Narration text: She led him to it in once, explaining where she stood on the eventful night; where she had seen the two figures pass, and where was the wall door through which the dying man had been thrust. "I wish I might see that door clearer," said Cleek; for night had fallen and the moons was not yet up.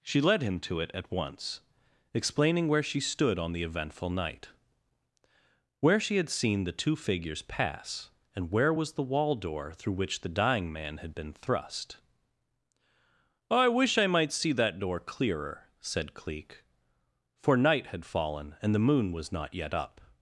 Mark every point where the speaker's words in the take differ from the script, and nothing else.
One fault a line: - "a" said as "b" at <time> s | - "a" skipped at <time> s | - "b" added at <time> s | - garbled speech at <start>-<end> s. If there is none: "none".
- "in" said as "at" at 0.9 s
- "moons" said as "moon" at 18.9 s